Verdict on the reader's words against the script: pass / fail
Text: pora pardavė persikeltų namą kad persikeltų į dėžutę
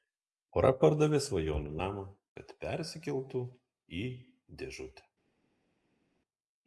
fail